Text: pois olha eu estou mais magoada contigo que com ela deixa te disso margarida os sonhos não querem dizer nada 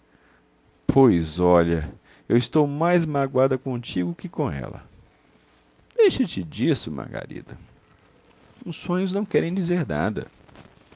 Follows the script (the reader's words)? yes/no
yes